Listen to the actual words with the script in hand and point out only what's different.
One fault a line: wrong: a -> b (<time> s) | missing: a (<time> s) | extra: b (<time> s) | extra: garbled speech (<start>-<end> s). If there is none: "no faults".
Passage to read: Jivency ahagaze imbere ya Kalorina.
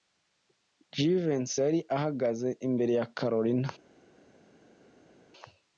extra: yari (1.6 s)